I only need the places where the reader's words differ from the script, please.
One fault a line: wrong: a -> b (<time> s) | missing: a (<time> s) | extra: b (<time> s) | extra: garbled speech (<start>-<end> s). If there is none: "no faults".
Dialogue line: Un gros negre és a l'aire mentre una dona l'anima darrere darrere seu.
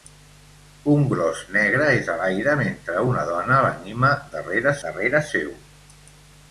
no faults